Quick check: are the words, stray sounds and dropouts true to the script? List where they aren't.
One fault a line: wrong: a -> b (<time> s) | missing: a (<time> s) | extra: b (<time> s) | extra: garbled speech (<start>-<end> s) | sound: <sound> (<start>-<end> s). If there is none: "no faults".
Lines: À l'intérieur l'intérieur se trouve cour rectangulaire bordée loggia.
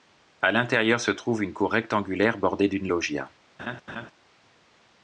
missing: l'intérieur (1.0 s)
extra: une (1.4 s)
extra: d'une (2.7 s)
sound: laugh (3.6-4.1 s)